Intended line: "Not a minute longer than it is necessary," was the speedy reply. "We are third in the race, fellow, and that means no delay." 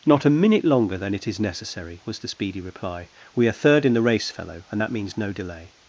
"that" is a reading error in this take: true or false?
false